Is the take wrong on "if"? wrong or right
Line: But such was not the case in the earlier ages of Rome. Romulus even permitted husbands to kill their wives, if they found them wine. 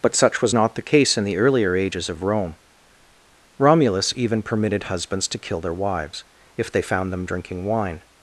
right